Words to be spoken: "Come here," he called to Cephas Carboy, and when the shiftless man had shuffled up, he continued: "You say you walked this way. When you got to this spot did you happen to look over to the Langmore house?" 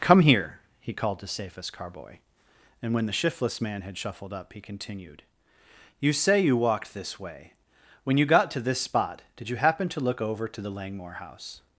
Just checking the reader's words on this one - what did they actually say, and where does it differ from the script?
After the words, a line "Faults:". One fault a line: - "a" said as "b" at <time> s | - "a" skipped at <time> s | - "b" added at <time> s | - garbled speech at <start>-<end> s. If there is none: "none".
"Come here," he called to Cephas Carboy, and when the shiftless man had shuffled up, he continued: "You say you walked this way. When you got to this spot did you happen to look over to the Langmore house?"
Faults:
none